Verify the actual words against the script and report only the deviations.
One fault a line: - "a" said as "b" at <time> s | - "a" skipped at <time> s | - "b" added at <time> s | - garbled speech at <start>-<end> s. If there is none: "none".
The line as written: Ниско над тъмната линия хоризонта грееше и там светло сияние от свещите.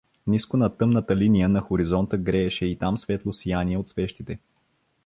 - "на" added at 1.5 s